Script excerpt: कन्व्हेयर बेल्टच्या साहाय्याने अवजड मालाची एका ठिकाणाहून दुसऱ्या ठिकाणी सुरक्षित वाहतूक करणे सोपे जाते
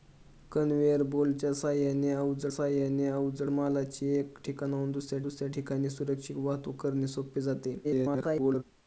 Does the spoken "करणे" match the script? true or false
true